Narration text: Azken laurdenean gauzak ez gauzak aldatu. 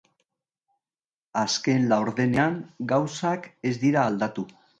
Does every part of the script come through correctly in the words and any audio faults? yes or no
no